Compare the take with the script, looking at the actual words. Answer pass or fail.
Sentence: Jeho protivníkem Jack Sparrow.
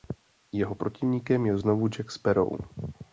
fail